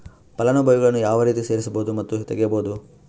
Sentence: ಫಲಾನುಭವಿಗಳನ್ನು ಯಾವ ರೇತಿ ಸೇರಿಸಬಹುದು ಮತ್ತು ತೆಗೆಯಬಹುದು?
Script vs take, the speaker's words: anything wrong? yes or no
no